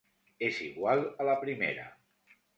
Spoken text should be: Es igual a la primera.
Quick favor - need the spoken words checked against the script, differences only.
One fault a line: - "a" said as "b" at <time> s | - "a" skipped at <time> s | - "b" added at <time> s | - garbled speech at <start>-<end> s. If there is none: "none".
none